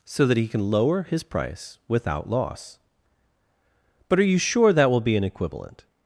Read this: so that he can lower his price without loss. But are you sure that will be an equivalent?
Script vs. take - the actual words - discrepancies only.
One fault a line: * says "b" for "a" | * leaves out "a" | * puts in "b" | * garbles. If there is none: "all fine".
all fine